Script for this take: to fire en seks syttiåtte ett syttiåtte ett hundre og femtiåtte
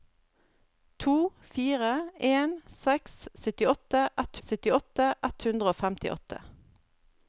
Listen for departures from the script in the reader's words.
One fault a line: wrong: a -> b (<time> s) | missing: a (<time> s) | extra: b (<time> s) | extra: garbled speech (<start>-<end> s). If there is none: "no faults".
no faults